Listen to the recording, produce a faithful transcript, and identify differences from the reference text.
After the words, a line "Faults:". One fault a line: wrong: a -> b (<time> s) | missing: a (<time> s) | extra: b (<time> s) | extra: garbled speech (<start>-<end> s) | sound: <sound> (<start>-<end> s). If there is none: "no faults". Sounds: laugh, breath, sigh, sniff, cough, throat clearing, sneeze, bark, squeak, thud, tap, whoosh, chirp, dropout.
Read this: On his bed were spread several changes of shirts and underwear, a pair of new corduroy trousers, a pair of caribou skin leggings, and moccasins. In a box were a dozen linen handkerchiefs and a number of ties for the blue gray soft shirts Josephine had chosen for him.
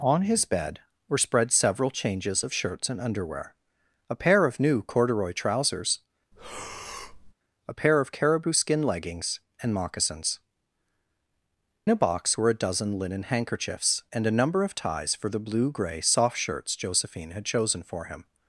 On his bed were spread several changes of shirts and underwear, a pair of new corduroy trousers, a pair of caribou skin leggings, and moccasins. A box were a dozen linen handkerchiefs and a number of ties for the blue gray soft shirts Josephine had chosen for him.
Faults:
sound: breath (6.3-7.3 s)
missing: In (10.4 s)